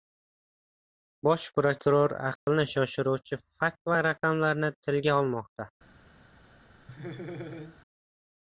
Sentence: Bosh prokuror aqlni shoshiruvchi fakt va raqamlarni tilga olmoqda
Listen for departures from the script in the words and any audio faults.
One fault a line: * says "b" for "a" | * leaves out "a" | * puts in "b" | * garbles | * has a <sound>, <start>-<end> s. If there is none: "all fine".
* has a dropout, 2.4-2.5 s
* has a laugh, 6.9-7.8 s